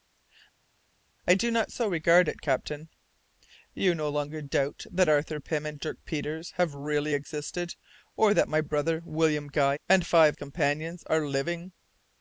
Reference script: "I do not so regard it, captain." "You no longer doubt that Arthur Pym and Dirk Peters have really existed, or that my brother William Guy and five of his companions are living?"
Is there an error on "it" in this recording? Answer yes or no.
no